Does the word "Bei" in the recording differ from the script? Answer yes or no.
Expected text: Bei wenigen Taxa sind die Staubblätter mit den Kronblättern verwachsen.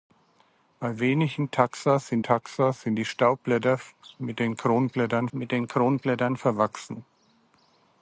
no